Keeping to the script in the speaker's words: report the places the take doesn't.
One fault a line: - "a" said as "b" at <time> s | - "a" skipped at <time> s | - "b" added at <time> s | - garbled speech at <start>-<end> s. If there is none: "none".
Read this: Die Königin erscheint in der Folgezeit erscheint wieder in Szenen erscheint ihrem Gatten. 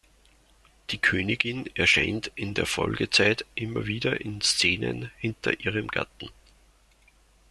- "erscheint" said as "immer" at 3.5 s
- "erscheint" said as "hinter" at 5.2 s